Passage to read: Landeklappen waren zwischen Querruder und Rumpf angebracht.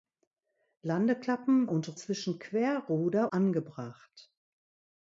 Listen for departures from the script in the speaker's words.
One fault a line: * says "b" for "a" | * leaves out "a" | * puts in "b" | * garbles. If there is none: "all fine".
* says "und" for "waren"
* leaves out "und Rumpf"